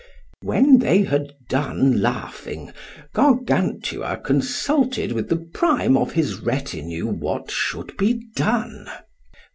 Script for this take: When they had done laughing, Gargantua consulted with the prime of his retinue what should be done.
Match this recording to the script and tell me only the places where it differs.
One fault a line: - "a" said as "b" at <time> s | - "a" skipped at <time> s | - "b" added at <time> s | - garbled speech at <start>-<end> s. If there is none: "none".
none